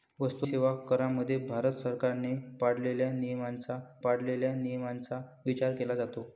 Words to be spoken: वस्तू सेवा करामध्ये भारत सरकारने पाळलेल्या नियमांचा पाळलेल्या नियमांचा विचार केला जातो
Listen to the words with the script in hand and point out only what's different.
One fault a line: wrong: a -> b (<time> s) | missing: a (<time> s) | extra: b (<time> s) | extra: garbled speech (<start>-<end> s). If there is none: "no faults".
no faults